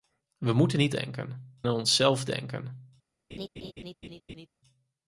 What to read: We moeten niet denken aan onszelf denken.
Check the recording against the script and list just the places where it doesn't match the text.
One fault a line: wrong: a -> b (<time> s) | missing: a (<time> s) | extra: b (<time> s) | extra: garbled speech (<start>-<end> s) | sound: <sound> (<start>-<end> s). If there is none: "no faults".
sound: laugh (3.3-4.5 s)